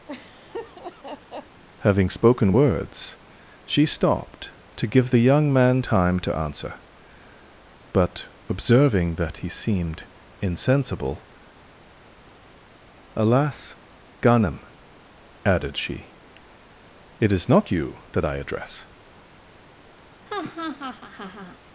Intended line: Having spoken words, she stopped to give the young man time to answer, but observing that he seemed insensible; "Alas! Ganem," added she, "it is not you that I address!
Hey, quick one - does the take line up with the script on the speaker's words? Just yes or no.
yes